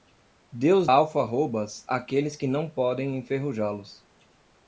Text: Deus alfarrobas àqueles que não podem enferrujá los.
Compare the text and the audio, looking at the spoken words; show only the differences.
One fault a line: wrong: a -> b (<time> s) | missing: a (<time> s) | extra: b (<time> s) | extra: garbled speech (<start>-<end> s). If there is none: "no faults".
no faults